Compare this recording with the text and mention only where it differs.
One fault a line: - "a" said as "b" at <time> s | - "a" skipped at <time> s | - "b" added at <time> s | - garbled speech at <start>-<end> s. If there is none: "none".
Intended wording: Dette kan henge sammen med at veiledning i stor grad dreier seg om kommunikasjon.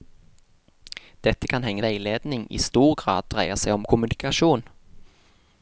- "sammen med at" skipped at 1.8 s